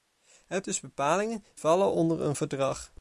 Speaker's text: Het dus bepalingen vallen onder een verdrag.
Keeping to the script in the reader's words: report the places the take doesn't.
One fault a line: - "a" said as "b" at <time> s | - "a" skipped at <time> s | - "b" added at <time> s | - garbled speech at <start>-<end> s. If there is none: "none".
none